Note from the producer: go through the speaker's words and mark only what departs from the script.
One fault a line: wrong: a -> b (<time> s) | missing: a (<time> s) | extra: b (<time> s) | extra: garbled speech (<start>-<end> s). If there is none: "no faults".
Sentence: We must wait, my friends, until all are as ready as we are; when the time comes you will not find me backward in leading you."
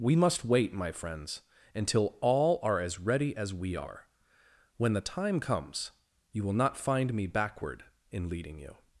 no faults